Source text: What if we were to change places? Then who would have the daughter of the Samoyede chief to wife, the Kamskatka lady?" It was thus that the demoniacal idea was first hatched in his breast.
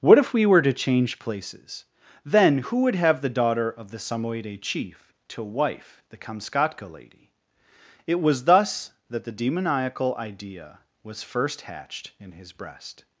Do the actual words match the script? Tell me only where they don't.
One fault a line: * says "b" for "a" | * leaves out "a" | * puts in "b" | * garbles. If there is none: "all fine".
all fine